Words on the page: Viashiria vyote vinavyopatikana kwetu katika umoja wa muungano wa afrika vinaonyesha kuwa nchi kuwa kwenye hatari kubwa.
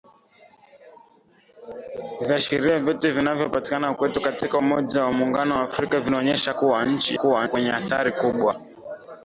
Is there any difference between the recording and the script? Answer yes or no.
no